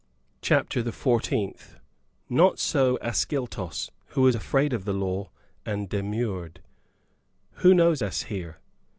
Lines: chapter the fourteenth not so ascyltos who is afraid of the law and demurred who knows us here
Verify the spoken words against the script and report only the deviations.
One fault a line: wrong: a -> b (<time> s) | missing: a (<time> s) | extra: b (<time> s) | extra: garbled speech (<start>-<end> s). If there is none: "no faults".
wrong: is -> was (4.2 s)